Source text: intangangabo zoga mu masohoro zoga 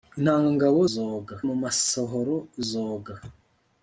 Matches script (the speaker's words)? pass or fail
pass